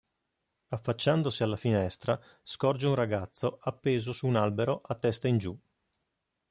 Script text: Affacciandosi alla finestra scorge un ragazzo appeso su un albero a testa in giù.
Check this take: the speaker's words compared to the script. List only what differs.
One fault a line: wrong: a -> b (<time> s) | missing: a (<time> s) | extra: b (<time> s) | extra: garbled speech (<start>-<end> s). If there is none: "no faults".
no faults